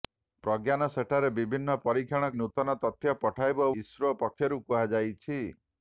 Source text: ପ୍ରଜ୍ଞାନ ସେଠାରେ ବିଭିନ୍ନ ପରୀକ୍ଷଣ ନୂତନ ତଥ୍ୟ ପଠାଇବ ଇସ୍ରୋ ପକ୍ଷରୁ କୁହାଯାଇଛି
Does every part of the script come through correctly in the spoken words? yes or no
yes